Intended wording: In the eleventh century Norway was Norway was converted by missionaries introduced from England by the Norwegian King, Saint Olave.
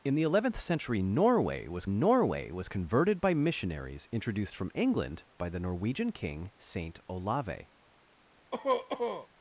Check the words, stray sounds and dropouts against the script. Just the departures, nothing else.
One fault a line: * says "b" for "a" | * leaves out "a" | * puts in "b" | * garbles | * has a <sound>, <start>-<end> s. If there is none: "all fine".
* has a cough, 8.5-9.3 s